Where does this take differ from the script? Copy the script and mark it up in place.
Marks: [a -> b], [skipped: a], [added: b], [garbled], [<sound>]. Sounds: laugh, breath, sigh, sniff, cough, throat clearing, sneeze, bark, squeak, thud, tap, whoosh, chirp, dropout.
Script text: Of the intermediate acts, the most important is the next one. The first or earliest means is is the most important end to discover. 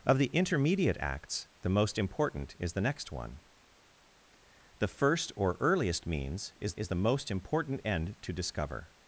Of the intermediate acts, the most important is the next one. The first or earliest means is is the most important end to discover.